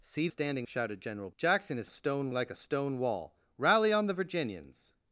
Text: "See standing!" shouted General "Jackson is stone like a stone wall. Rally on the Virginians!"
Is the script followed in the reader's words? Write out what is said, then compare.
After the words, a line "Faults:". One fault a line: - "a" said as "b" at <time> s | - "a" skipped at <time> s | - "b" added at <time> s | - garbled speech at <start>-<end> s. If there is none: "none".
"See standing!" shouted General "Jackson is stone like a stone wall. Rally on the Virginians!"
Faults:
none